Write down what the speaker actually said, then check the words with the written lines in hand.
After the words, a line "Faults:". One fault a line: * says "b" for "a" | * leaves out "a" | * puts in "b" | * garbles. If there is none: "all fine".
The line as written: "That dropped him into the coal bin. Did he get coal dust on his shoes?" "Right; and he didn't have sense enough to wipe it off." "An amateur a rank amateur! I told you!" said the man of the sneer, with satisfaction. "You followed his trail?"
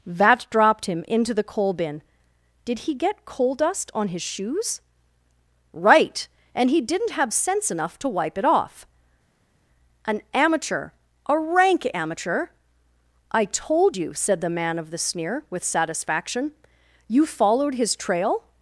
"Vat dropped him into the coal bin. Did he get coal dust on his shoes?" "Right; and he didn't have sense enough to wipe it off." "An amateur a rank amateur! I told you!" said the man of the sneer, with satisfaction. "You followed his trail?"
Faults:
* says "Vat" for "That"